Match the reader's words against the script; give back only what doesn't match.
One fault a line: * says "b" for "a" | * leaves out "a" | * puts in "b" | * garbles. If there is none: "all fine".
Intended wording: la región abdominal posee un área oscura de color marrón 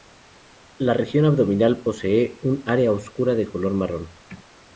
all fine